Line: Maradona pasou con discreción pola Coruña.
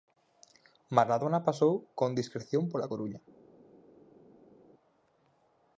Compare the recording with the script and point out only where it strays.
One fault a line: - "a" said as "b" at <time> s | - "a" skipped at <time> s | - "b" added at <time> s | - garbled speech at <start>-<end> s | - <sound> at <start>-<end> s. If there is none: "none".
none